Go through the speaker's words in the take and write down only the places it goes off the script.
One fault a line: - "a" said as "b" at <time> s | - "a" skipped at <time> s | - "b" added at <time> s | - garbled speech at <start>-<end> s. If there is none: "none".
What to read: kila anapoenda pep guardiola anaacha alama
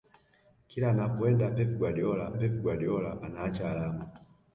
- "pep guardiola" added at 2.3 s